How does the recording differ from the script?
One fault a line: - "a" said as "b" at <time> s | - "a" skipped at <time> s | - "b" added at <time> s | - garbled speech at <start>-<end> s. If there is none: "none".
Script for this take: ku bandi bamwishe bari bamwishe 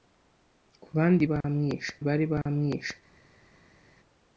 none